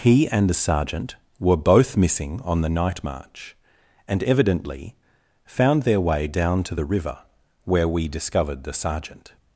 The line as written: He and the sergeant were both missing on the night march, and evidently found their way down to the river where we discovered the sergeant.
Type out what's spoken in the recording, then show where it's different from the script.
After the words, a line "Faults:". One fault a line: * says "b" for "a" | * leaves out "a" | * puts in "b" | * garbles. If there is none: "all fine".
He and the sergeant were both missing on the night march, and evidently found their way down to the river where we discovered the sergeant.
Faults:
all fine